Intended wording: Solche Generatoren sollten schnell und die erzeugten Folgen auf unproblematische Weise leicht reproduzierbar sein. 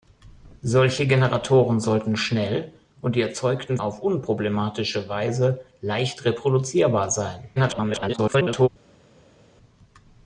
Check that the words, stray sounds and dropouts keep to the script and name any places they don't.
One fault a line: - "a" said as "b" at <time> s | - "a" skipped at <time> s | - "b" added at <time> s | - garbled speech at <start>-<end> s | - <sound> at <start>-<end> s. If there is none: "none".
- "Folgen" skipped at 3.8 s
- garbled speech at 7.6-8.7 s